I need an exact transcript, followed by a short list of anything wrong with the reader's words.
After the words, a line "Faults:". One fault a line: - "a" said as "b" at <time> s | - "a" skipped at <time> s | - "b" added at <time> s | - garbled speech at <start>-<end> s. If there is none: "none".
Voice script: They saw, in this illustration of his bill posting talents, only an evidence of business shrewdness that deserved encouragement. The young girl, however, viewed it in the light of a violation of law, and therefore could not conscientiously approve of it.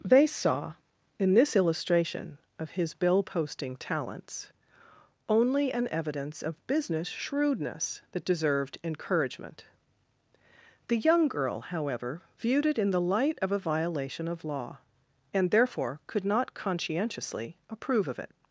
They saw, in this illustration of his bill posting talents, only an evidence of business shrewdness that deserved encouragement. The young girl, however, viewed it in the light of a violation of law, and therefore could not conscientiously approve of it.
Faults:
none